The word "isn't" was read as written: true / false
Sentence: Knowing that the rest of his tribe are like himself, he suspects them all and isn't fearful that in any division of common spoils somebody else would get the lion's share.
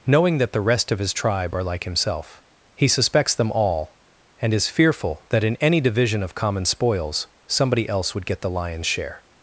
false